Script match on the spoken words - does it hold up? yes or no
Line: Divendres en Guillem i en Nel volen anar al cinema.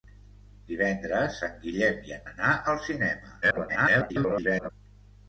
no